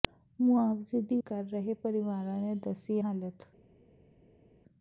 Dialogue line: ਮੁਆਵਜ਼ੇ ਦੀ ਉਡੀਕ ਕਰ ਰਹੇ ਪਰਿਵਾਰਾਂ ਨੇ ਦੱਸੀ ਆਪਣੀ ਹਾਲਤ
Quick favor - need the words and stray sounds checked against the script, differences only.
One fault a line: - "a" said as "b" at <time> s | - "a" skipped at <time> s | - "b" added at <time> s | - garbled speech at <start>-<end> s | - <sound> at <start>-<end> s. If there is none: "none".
- "ਉਡੀਕ" skipped at 1.2 s
- "ਆਪਣੀ" skipped at 3.0 s